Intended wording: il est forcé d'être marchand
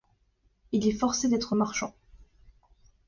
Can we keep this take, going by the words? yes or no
yes